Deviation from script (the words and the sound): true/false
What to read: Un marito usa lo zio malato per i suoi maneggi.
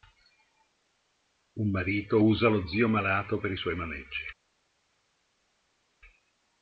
false